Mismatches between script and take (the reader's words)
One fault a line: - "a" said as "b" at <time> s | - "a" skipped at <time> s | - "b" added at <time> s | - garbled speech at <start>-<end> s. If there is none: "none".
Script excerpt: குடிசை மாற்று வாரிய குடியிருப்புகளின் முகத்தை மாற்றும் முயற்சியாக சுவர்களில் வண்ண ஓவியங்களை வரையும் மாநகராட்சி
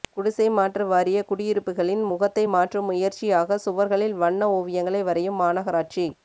none